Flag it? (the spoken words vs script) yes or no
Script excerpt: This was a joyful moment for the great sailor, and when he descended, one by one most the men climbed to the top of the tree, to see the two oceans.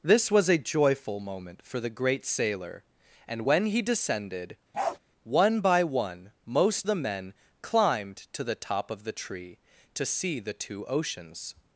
no